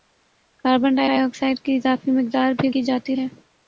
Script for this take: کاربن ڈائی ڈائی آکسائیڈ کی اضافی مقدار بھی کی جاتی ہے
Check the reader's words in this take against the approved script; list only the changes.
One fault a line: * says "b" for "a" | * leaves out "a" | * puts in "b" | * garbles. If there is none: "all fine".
all fine